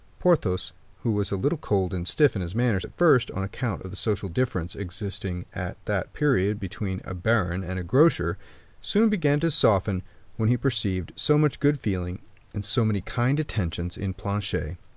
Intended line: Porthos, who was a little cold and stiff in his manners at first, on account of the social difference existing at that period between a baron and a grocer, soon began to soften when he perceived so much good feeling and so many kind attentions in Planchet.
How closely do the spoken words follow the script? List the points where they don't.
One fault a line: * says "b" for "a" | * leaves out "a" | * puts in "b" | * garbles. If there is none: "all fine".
all fine